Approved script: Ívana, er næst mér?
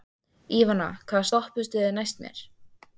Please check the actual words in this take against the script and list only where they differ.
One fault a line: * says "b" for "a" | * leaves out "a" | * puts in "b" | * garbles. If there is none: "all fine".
* puts in "hvaða stoppistöð"